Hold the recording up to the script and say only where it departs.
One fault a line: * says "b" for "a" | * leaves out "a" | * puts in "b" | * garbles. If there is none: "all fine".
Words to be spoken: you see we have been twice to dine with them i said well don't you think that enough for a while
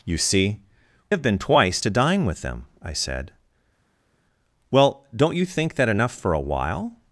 * leaves out "we"